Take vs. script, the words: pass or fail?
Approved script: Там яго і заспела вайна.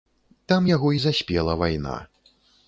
pass